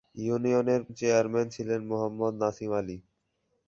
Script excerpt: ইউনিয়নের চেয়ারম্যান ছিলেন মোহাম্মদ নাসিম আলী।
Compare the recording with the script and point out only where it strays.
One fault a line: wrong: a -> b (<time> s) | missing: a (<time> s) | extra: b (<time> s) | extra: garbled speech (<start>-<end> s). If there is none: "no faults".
no faults